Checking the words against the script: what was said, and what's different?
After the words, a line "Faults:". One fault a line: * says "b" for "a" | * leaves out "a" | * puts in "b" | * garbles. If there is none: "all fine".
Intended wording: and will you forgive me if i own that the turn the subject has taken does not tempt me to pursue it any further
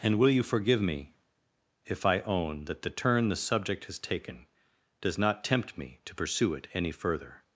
and will you forgive me if i own that the turn the subject has taken does not tempt me to pursue it any further
Faults:
all fine